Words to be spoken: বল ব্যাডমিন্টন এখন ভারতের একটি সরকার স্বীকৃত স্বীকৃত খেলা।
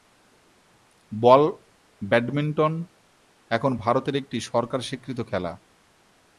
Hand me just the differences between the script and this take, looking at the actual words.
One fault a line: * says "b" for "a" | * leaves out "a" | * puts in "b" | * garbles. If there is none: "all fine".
* leaves out "স্বীকৃত"